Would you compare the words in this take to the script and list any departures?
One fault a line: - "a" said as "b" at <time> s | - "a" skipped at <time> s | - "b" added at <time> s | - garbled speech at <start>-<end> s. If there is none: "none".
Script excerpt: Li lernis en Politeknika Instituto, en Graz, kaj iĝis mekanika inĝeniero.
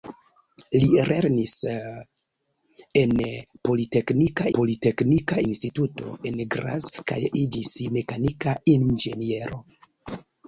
- "Politeknika" added at 4.6 s